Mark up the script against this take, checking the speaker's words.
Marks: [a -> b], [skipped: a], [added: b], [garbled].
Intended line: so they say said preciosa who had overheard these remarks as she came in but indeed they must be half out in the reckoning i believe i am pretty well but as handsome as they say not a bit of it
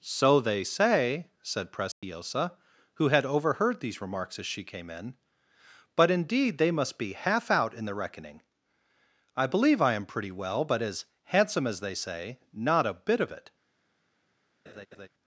so they say said preciosa who had overheard these remarks as she came in but indeed they must be half out in the reckoning i believe i am pretty well but as handsome as they say not a bit of it